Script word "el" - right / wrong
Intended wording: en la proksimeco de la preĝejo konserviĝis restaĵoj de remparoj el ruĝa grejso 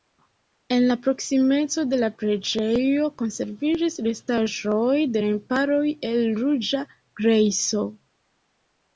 right